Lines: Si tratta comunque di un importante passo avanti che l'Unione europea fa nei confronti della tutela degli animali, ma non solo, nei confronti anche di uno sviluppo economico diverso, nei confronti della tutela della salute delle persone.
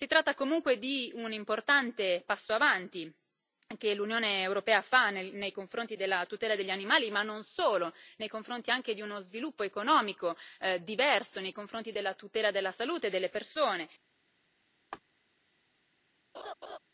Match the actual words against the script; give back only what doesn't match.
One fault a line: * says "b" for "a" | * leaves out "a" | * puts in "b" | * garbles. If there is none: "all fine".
all fine